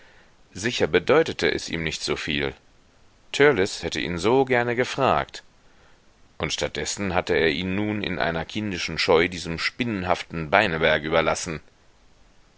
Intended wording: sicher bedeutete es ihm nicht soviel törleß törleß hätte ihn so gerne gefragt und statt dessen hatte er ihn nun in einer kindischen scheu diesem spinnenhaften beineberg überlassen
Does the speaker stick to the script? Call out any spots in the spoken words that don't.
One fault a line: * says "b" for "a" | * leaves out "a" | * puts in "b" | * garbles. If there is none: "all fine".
* leaves out "törleß"